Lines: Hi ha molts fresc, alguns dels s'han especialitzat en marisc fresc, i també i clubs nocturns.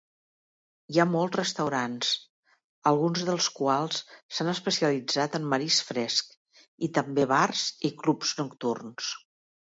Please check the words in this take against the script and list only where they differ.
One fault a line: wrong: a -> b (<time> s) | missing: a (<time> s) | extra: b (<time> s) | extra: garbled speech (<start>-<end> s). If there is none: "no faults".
wrong: fresc -> restaurants (1.4 s)
extra: quals (3.6 s)
extra: bars (7.3 s)